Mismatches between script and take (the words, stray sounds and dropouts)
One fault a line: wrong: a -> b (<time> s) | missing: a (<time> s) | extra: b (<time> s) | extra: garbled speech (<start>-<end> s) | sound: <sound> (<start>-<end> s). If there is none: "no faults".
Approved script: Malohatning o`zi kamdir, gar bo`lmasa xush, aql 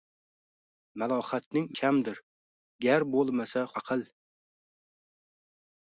missing: o`zi (1.7 s)
missing: xush (3.7 s)